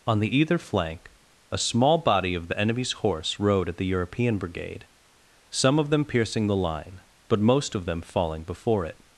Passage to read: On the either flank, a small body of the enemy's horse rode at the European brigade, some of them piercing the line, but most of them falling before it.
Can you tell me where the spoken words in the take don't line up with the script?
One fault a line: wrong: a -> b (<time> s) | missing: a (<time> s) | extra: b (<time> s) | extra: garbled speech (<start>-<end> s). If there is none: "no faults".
no faults